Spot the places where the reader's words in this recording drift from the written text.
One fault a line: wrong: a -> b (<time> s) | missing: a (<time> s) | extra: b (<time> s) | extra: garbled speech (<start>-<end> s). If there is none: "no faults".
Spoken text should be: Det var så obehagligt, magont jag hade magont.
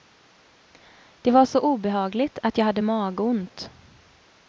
wrong: magont -> att (2.4 s)